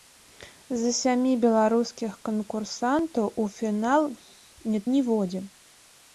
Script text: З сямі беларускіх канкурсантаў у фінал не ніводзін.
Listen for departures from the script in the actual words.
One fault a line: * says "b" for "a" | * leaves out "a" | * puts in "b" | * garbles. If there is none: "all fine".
all fine